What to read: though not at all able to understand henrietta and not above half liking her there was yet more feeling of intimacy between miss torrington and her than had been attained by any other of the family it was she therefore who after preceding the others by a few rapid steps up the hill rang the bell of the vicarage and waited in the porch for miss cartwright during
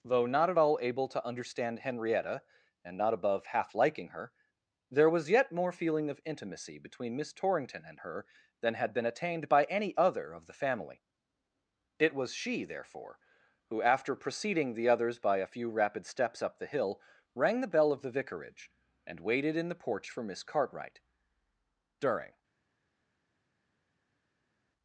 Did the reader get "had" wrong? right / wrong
right